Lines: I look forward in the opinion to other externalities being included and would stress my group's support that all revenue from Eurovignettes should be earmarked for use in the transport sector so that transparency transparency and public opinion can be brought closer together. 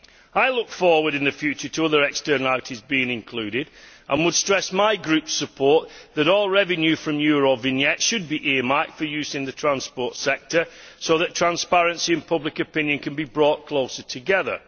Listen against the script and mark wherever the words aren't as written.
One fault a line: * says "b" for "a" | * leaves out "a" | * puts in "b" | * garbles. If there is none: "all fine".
* says "future" for "opinion"
* leaves out "transparency"